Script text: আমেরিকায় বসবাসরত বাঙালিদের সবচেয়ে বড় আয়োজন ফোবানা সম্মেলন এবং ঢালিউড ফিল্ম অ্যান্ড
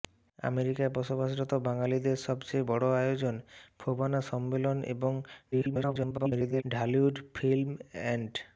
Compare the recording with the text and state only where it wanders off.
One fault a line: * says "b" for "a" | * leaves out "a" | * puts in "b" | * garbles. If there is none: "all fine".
* garbles